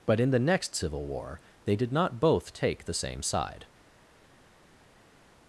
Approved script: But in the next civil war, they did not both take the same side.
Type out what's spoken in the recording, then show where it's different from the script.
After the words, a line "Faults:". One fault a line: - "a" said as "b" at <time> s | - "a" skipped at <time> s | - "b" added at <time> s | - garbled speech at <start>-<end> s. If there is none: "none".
But in the next civil war, they did not both take the same side.
Faults:
none